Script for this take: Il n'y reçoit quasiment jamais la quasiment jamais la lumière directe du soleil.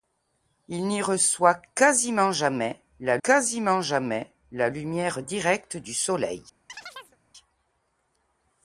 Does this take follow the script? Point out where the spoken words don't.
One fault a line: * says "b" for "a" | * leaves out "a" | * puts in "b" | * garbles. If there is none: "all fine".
all fine